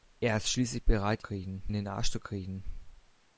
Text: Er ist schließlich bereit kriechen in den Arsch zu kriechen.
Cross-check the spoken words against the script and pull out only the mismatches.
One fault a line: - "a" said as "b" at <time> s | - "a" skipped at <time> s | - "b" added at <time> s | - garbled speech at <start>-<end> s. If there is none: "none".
none